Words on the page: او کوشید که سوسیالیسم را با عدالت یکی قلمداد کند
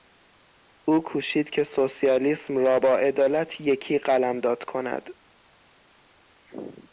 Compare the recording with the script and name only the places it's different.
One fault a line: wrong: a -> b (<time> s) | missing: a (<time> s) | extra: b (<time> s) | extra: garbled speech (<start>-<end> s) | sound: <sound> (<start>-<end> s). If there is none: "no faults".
no faults